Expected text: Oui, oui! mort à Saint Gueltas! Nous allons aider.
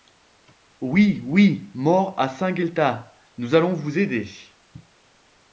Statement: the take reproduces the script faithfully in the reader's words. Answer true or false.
false